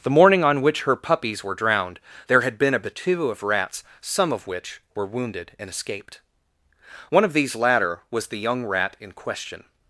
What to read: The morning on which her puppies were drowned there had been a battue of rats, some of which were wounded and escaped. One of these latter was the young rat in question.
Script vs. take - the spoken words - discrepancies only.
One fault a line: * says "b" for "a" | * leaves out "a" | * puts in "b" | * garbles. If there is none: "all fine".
all fine